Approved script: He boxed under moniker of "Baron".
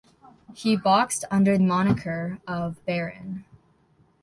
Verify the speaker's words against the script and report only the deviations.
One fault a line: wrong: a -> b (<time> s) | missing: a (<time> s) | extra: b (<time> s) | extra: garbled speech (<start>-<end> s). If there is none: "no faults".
no faults